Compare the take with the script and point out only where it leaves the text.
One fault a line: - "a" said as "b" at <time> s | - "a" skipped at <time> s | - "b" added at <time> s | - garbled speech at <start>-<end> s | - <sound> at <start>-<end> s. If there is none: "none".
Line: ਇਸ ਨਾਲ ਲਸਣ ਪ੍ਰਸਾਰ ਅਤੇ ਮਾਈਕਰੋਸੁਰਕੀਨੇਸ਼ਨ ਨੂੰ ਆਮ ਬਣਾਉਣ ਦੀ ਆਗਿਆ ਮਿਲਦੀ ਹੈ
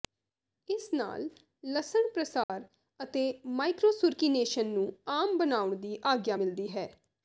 - dropout at 2.4-2.5 s